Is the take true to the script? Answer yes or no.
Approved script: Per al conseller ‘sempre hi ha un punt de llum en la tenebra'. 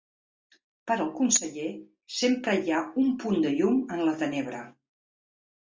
yes